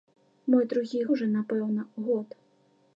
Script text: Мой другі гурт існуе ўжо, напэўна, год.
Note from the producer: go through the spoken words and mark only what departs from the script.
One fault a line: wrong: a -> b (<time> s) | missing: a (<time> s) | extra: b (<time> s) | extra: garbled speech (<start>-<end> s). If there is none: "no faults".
missing: гурт існуе (1.0 s)